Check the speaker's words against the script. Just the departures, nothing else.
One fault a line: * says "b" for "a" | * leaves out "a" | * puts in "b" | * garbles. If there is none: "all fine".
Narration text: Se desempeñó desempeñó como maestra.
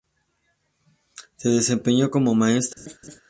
* leaves out "desempeñó"